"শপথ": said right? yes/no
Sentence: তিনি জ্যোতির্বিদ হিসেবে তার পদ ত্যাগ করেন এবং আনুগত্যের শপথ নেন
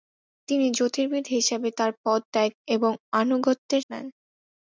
no